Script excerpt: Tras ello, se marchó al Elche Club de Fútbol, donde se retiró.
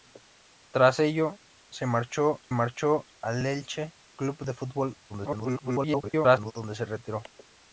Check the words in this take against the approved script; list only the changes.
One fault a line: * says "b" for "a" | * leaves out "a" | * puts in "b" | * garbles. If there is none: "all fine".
* puts in "marchó"
* garbles